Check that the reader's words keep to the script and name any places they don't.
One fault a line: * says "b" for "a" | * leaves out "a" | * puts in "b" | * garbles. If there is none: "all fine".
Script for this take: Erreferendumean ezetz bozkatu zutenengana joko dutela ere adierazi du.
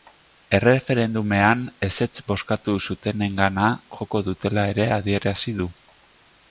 all fine